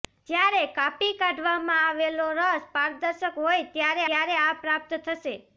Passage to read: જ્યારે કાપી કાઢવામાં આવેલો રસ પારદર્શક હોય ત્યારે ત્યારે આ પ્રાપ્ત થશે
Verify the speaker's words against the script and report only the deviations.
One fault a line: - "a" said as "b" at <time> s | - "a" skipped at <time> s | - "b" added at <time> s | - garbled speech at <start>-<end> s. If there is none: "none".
none